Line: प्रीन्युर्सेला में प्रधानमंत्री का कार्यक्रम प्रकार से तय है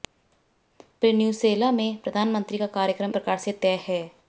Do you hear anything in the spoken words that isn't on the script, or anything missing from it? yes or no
no